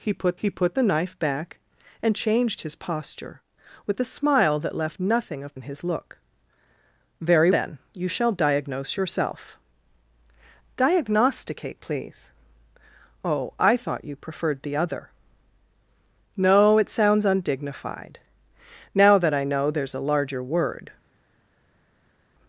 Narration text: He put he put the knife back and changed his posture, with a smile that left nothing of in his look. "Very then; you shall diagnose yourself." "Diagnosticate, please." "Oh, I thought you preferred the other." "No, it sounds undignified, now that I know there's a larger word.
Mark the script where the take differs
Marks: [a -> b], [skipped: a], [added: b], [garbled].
He put he put the knife back and changed his posture, with a smile that left nothing of in his look. "Very then; you shall diagnose yourself." "Diagnosticate, please." "Oh, I thought you preferred the other." "No, it sounds undignified, now that I know there's a larger word.